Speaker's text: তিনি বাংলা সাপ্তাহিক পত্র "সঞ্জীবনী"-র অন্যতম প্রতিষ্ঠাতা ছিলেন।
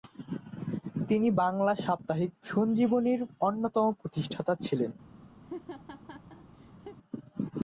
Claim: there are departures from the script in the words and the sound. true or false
true